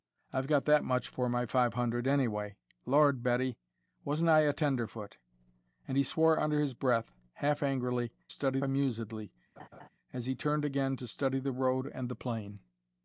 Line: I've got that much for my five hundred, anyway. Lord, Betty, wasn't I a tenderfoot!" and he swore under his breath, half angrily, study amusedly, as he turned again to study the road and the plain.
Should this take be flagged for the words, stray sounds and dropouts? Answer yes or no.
yes